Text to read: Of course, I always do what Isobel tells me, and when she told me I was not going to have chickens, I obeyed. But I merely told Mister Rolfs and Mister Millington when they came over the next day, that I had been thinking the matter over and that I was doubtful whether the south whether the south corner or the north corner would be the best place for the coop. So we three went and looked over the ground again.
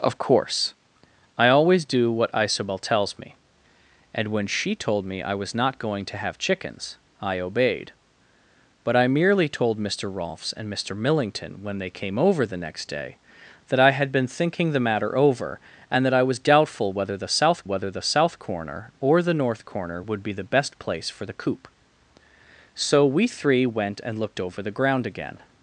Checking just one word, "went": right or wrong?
right